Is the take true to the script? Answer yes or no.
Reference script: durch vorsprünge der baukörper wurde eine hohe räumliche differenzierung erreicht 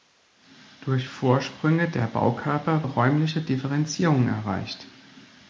no